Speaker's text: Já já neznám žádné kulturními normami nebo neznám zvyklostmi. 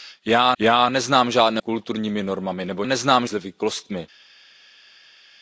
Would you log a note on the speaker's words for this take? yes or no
no